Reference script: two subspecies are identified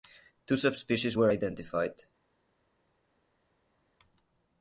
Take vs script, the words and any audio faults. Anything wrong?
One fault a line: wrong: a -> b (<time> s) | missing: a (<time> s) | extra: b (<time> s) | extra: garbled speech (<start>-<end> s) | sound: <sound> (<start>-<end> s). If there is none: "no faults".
wrong: are -> were (1.1 s)